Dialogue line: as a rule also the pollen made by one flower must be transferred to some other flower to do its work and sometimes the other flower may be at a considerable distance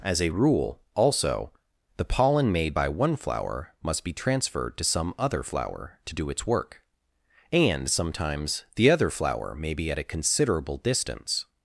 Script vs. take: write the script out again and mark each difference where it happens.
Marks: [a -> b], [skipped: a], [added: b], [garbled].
as a rule also the pollen made by one flower must be transferred to some other flower to do its work and sometimes the other flower may be at a considerable distance